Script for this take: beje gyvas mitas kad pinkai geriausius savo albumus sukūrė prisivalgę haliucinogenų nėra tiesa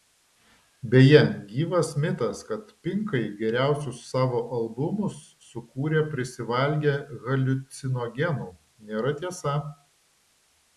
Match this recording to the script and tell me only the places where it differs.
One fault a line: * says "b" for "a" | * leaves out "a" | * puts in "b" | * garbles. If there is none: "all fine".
all fine